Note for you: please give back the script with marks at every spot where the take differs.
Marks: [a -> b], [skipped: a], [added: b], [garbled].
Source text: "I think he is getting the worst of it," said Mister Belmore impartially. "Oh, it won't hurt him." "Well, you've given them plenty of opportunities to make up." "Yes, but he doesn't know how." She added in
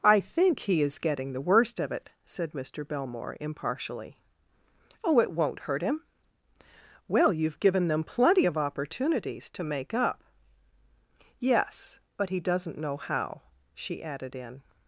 "I think he is getting the worst of it," said Mister Belmore impartially. "Oh, it won't hurt him." "Well, you've given them plenty of opportunities to make up." "Yes, but he doesn't know how." She added in